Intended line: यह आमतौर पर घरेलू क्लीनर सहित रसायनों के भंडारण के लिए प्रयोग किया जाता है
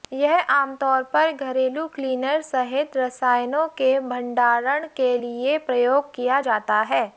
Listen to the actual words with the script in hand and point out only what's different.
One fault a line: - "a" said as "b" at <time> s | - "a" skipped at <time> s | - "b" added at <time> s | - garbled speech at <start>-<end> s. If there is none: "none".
none